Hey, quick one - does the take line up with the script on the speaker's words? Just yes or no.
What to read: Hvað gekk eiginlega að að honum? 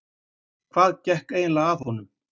yes